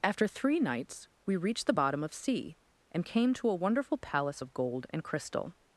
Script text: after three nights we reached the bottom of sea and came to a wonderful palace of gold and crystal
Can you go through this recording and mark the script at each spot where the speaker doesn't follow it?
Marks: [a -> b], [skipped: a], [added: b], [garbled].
after three nights we reached the bottom of sea and came to a wonderful palace of gold and crystal